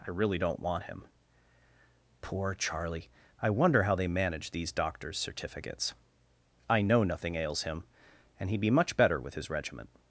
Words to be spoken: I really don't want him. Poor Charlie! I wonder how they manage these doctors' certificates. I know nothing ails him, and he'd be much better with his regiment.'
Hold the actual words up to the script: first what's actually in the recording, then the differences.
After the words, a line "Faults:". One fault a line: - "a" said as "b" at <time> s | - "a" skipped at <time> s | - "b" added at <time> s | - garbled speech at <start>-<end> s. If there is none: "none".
I really don't want him. Poor Charlie! I wonder how they manage these doctors' certificates. I know nothing ails him, and he'd be much better with his regiment.'
Faults:
none